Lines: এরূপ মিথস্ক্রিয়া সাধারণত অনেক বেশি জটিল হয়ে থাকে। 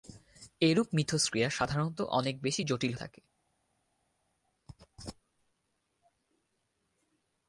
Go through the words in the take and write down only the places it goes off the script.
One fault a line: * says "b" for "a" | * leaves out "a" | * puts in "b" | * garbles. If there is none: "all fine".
* leaves out "হয়ে"